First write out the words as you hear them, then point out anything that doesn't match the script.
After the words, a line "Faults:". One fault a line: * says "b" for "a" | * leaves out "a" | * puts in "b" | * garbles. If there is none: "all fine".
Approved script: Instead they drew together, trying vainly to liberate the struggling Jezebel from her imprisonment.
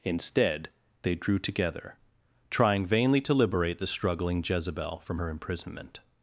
Instead they drew together, trying vainly to liberate the struggling Jezebel from her imprisonment.
Faults:
all fine